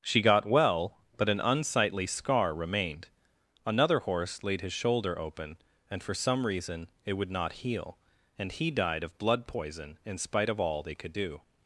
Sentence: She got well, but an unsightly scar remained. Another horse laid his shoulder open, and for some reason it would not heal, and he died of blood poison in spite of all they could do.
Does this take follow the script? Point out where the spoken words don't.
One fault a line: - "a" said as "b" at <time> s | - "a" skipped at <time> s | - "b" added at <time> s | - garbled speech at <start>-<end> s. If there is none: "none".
none